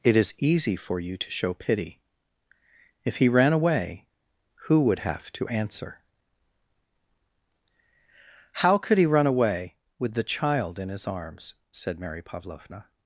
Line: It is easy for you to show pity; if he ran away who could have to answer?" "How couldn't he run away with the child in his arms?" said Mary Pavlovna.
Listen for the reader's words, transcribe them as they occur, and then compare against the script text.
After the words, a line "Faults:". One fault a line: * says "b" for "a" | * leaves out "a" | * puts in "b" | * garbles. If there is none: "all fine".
It is easy for you to show pity; if he ran away who would have to answer?" "How could he run away with the child in his arms?" said Mary Pavlovna.
Faults:
* says "would" for "could"
* says "could" for "couldn't"